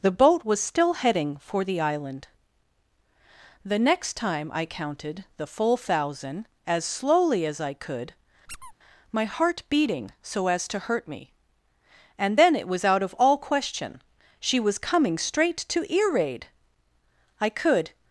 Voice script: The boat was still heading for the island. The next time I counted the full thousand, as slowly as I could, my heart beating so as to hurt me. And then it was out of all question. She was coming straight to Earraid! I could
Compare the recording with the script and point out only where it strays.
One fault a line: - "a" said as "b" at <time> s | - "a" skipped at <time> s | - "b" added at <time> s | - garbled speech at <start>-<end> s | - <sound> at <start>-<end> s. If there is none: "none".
- squeak at 8.5-8.7 s